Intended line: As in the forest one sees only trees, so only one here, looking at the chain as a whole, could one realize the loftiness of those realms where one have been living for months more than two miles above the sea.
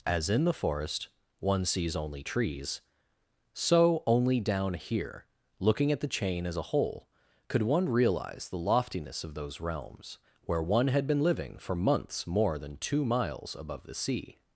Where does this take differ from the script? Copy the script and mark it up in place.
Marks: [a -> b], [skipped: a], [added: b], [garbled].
As in the forest one sees only trees, so only [one -> down] here, looking at the chain as a whole, could one realize the loftiness of those realms where one [have -> had] been living for months more than two miles above the sea.